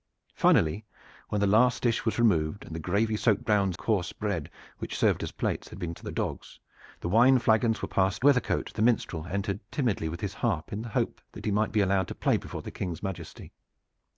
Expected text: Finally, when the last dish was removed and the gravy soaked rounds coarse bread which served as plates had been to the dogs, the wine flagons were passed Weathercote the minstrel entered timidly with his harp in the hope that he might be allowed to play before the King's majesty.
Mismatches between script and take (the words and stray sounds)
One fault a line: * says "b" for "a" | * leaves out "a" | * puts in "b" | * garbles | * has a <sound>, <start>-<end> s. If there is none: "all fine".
all fine